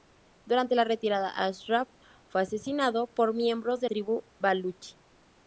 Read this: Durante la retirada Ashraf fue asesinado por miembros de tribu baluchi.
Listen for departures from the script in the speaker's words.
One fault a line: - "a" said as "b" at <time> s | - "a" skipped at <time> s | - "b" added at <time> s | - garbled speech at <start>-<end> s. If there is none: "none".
none